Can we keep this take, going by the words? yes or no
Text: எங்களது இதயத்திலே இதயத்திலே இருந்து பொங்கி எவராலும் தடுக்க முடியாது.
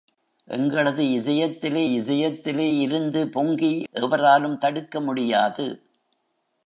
yes